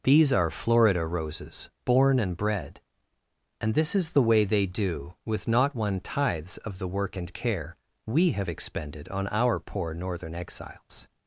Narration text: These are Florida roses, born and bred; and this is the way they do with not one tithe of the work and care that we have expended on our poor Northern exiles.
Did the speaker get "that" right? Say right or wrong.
wrong